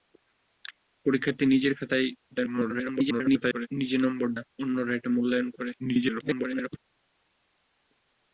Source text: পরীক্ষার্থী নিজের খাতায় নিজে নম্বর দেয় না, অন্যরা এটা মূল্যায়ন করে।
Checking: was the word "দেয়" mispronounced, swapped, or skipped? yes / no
yes